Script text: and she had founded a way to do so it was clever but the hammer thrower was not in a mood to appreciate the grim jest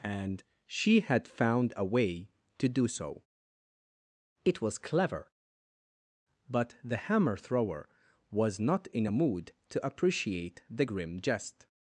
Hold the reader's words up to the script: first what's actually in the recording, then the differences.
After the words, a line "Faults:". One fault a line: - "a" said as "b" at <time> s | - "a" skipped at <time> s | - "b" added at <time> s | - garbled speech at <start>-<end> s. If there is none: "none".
and she had found a way to do so it was clever but the hammer thrower was not in a mood to appreciate the grim jest
Faults:
- "founded" said as "found" at 1.3 s